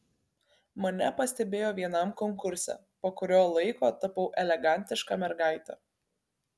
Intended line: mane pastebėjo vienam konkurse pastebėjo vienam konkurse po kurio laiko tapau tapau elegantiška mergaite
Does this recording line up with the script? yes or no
no